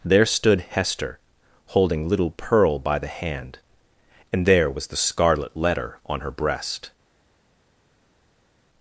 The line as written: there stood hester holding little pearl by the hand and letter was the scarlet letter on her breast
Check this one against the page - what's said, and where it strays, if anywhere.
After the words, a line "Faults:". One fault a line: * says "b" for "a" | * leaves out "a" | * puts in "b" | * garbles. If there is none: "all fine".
there stood hester holding little pearl by the hand and there was the scarlet letter on her breast
Faults:
* says "there" for "letter"